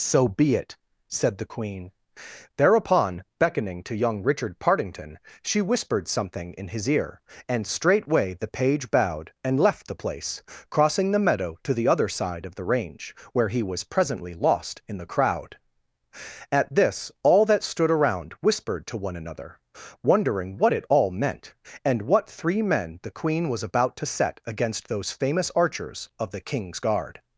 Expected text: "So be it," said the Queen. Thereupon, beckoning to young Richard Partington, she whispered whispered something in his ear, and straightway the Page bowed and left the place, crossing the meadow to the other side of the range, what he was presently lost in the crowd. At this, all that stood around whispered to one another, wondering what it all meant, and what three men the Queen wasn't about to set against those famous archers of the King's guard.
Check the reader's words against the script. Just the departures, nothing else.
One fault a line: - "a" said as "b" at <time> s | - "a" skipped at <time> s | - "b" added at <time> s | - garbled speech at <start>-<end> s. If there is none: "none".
- "whispered" skipped at 6.1 s
- "what" said as "where" at 13.3 s
- "wasn't" said as "was" at 23.5 s